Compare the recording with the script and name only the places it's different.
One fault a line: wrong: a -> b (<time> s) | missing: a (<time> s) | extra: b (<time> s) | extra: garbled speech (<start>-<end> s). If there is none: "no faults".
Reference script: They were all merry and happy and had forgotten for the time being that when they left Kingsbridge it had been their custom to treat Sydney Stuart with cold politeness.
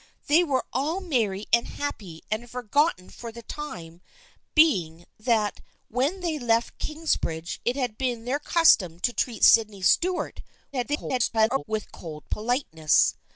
extra: garbled speech (10.7-11.6 s)